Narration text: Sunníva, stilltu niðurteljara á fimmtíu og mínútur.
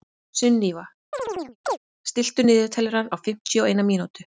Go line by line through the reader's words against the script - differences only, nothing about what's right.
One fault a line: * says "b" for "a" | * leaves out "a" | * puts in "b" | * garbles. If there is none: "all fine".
* puts in "eina"